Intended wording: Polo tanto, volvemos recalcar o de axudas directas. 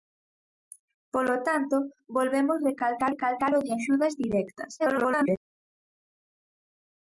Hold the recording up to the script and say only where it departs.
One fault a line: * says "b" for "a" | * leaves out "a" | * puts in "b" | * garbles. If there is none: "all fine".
* puts in "recalcar"
* garbles